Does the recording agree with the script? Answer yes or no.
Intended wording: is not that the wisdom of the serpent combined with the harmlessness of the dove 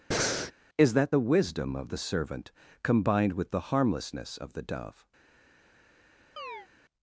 no